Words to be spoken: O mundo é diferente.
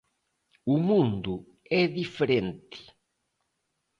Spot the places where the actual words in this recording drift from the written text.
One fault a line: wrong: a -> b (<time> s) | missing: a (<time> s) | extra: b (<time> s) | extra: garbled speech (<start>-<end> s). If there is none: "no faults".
no faults